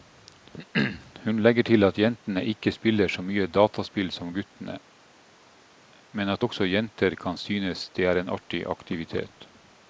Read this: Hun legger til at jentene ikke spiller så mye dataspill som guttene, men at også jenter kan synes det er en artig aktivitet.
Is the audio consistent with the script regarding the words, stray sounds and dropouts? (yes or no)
yes